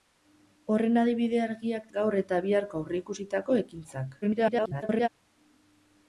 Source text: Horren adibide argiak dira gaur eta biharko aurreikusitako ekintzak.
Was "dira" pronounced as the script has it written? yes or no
no